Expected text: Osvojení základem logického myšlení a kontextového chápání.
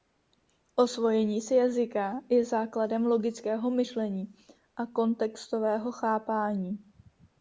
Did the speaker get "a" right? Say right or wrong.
right